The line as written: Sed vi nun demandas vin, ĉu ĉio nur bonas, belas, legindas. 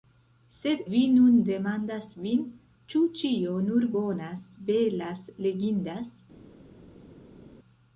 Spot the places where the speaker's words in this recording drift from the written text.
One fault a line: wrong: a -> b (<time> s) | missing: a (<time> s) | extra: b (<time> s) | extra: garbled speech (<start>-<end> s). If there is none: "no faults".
no faults